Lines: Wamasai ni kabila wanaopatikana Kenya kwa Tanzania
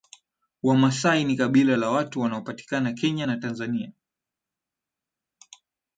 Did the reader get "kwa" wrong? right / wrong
wrong